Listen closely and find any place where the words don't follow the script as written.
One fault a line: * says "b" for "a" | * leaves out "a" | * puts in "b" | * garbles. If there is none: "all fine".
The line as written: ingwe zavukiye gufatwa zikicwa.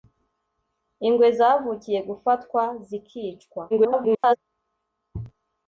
* garbles